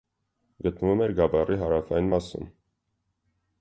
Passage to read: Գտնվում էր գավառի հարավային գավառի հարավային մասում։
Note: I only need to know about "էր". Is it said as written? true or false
true